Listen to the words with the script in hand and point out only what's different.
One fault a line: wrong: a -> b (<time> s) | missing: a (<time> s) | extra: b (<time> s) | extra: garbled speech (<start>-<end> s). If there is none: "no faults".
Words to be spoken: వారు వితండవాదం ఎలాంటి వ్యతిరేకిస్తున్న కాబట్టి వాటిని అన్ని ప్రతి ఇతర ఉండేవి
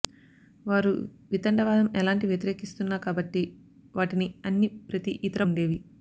no faults